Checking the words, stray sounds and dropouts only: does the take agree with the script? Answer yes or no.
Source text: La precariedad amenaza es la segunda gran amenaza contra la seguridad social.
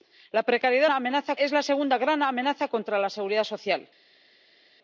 yes